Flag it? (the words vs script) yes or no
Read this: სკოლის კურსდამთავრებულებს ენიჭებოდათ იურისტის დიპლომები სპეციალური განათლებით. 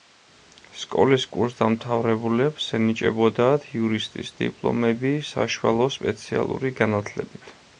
yes